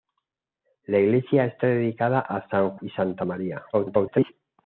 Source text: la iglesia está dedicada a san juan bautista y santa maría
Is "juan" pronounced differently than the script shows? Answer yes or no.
yes